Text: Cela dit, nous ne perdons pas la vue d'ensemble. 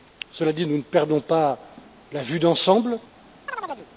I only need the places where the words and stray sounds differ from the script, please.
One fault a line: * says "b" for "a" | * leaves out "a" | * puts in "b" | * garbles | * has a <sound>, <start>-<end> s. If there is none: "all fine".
* has a chirp, 3.5-3.9 s